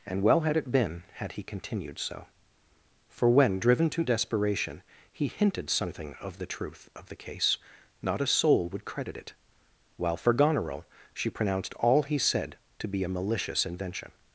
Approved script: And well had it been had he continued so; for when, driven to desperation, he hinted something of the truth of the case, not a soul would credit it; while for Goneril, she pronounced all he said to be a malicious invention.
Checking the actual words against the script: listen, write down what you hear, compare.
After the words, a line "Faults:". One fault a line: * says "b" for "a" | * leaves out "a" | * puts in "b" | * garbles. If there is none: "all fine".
And well had it been had he continued so; for when, driven to desperation, he hinted something of the truth of the case, not a soul would credit it; while for Goneril, she pronounced all he said to be a malicious invention.
Faults:
all fine